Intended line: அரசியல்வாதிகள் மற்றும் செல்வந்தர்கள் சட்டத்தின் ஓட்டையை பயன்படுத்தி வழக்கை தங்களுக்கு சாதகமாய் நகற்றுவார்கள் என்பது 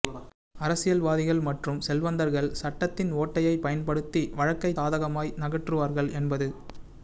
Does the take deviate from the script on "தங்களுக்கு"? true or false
true